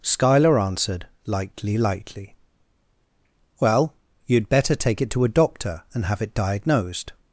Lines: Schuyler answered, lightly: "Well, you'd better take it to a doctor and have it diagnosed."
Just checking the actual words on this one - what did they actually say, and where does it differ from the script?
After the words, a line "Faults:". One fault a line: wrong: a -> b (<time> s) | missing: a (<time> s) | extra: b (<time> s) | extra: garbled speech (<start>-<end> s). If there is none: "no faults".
Schuyler answered, lightly lightly: "Well, you'd better take it to a doctor and have it diagnosed."
Faults:
extra: lightly (1.8 s)